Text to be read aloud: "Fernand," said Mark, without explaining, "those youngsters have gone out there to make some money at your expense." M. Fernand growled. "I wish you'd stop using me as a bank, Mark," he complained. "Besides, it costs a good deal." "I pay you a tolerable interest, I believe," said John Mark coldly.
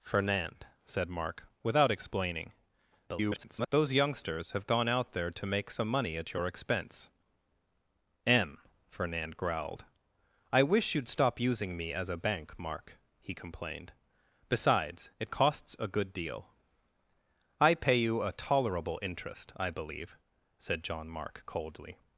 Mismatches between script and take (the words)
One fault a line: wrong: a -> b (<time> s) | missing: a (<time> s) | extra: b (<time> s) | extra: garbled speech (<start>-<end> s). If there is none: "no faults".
extra: garbled speech (3.1-3.7 s)